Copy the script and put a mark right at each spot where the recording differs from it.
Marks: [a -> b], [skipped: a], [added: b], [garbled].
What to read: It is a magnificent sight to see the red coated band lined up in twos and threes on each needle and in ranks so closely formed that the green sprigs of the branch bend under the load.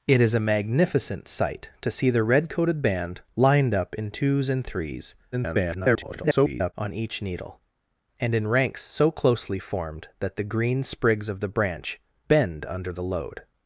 It is a magnificent sight to see the red coated band lined up in twos and threes [garbled] on each needle and in ranks so closely formed that the green sprigs of the branch bend under the load.